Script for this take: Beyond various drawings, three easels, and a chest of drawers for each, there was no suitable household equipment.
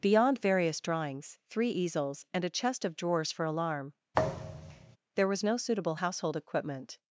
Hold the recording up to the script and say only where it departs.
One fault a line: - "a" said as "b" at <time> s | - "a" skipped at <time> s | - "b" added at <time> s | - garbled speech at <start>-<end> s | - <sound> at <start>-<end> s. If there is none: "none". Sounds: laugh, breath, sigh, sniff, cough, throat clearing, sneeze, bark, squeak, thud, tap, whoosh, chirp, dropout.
- "each" said as "alarm" at 3.4 s
- thud at 4.1-5.0 s